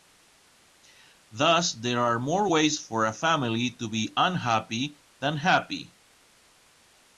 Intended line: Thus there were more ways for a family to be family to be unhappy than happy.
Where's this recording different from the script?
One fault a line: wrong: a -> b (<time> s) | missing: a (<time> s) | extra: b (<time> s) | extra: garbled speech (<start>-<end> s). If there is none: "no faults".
wrong: were -> are (2.0 s)
missing: family to be (4.1 s)